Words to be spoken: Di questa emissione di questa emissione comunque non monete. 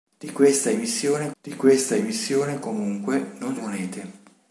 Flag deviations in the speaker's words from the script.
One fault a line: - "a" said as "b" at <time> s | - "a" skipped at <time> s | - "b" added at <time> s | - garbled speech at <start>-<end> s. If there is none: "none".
none